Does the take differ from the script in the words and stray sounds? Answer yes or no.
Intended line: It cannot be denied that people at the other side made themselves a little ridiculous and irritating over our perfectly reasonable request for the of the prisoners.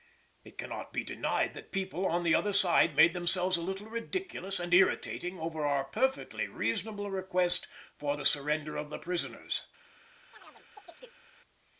yes